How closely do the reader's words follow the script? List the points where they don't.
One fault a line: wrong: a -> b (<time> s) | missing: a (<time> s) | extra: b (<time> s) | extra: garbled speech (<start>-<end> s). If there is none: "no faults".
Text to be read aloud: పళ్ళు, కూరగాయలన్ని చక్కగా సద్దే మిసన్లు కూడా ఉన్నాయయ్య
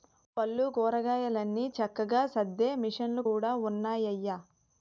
no faults